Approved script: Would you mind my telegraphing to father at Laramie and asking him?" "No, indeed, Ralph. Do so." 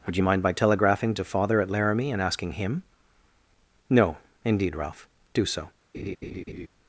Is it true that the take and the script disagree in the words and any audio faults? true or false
true